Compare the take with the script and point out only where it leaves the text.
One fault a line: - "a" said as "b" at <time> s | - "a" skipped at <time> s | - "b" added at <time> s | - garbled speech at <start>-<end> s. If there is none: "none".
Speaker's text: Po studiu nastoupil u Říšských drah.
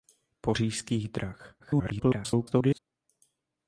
- "studiu nastoupil u" skipped at 0.6 s
- garbled speech at 1.6-2.8 s